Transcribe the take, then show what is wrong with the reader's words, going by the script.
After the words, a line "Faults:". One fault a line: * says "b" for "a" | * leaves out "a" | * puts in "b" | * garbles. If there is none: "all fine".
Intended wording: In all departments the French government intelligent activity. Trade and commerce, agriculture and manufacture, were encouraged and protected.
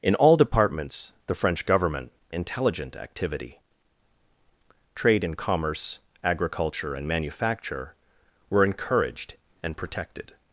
In all departments the French government intelligent activity. Trade and commerce, agriculture and manufacture, were encouraged and protected.
Faults:
all fine